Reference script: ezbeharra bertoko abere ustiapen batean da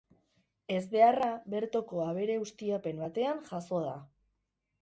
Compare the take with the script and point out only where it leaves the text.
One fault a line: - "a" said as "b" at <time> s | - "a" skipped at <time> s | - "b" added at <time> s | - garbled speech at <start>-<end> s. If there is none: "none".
- "jazo" added at 3.5 s